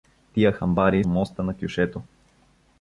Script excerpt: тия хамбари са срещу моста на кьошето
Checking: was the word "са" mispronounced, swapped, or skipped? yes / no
yes